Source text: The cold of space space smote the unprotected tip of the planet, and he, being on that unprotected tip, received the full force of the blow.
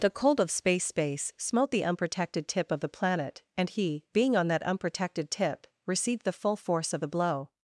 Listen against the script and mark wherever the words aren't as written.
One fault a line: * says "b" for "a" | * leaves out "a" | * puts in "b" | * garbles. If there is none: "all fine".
all fine